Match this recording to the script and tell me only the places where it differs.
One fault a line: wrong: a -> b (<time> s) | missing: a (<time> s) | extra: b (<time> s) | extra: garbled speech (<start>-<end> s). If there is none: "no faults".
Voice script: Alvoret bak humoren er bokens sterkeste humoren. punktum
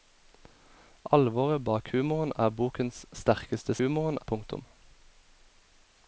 no faults